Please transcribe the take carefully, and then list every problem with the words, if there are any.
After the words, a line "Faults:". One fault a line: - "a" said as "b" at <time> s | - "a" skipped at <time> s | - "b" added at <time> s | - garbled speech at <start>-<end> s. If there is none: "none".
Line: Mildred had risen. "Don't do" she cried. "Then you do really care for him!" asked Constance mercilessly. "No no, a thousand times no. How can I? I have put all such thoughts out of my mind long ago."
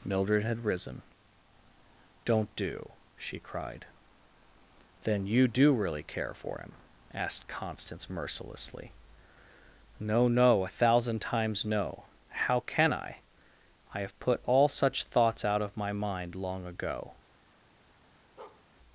Mildred had risen. "Don't do" she cried. "Then you do really care for him!" asked Constance mercilessly. "No no, a thousand times no. How can I? I have put all such thoughts out of my mind long ago."
Faults:
none